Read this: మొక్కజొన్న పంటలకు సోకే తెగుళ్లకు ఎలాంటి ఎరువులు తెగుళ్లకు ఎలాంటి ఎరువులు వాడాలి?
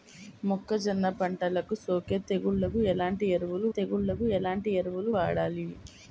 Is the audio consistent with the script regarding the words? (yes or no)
yes